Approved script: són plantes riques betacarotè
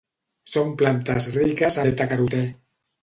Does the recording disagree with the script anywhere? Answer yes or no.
no